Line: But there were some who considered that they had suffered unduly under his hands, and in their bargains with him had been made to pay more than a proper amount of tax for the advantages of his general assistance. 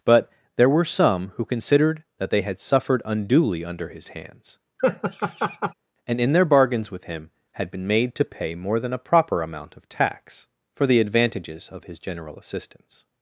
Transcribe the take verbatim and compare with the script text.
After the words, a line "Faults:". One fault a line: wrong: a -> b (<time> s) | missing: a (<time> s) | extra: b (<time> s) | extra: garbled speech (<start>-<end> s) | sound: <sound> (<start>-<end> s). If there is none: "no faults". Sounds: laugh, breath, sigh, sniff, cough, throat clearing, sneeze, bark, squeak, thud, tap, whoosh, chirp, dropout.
But there were some who considered that they had suffered unduly under his hands, and in their bargains with him had been made to pay more than a proper amount of tax for the advantages of his general assistance.
Faults:
sound: laugh (4.8-5.7 s)